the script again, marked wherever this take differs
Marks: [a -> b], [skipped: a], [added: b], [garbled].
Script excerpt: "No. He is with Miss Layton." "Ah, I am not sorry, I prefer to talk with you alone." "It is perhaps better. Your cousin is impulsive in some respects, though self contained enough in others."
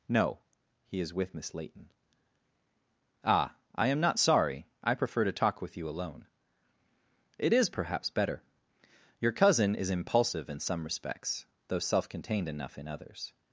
"No. He is with Miss Layton." "Ah, I am not sorry, I prefer to talk with you alone." "It is perhaps better. Your cousin is impulsive in some respects, though self contained enough in others."